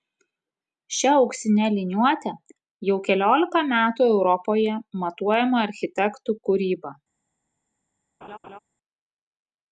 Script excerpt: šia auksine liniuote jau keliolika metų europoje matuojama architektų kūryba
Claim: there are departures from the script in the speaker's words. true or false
false